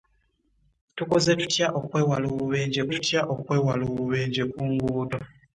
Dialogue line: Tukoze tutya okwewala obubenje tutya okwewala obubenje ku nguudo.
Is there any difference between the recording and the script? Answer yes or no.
no